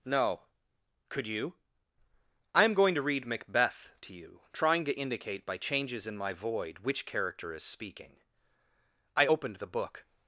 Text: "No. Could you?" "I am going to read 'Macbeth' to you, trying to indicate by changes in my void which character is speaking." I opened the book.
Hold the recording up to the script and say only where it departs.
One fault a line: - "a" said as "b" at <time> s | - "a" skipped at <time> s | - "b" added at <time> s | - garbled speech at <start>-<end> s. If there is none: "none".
none